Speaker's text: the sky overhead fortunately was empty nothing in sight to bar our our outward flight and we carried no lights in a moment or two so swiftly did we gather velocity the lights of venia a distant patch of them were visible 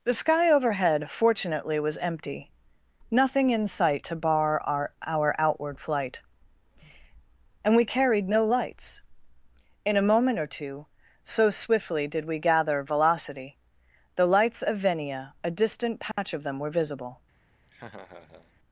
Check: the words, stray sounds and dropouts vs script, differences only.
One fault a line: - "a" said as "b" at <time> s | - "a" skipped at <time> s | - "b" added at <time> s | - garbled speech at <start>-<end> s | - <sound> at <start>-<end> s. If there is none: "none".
- dropout at 16.1-16.2 s
- laugh at 17.7-18.6 s